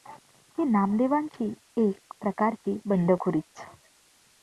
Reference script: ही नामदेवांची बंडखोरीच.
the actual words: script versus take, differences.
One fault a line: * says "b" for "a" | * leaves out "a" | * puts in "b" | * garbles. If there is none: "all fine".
* puts in "एक प्रकारची"